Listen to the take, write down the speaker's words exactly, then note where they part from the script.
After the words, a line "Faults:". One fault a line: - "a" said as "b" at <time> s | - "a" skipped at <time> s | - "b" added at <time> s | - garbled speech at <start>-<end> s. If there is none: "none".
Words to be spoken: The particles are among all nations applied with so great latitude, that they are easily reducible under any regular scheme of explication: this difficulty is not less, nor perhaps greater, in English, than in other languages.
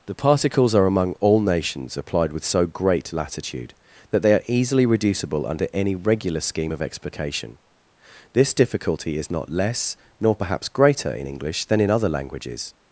The particles are among all nations applied with so great latitude, that they are easily reducible under any regular scheme of explication: this difficulty is not less, nor perhaps greater, in English, than in other languages.
Faults:
none